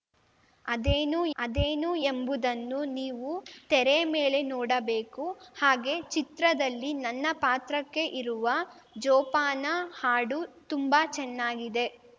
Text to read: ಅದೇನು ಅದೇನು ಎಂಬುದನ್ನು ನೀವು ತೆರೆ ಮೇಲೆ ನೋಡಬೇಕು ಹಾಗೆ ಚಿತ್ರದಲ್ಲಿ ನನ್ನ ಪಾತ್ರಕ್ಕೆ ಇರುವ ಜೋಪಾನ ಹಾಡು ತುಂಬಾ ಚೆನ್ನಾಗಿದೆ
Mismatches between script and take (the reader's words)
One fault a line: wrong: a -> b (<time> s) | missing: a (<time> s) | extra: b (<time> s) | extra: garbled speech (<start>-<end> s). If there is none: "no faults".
no faults